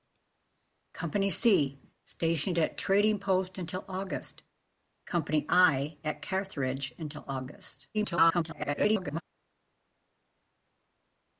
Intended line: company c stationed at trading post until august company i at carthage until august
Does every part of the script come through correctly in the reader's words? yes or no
no